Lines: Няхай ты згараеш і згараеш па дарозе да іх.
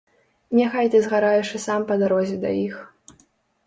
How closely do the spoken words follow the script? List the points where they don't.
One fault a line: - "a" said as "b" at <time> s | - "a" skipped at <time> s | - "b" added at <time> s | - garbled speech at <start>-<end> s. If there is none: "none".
- "згараеш" said as "сам" at 1.7 s